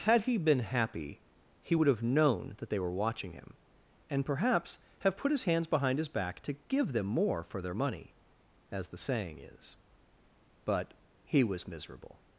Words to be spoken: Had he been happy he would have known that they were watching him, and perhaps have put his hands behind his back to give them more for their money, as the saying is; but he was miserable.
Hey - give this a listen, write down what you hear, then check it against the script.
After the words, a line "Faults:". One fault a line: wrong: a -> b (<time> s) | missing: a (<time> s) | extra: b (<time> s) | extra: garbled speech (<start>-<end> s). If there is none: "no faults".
Had he been happy he would have known that they were watching him, and perhaps have put his hands behind his back to give them more for their money, as the saying is; but he was miserable.
Faults:
no faults